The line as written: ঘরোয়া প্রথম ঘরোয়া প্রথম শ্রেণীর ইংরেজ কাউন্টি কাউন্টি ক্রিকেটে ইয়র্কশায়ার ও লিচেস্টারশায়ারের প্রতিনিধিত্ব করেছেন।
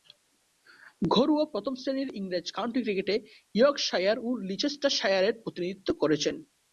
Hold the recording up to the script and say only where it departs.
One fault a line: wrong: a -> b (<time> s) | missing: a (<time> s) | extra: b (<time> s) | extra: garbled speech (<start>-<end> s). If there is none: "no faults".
missing: ঘরোয়া প্রথম (1.7 s)
missing: কাউন্টি (2.8 s)